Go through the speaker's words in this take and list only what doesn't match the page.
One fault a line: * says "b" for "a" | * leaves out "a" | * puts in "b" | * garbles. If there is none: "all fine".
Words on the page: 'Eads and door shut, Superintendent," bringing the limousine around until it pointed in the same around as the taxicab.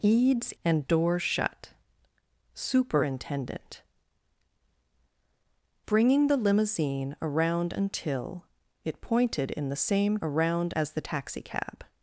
all fine